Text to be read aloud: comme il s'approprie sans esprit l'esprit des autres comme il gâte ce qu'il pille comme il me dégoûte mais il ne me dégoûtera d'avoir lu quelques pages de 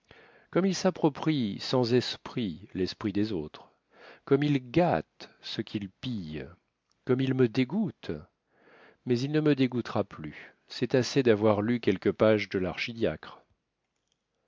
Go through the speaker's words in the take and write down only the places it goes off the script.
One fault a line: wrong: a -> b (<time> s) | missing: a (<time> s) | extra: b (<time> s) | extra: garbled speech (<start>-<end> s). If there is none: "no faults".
extra: plus c'est assez (10.0 s)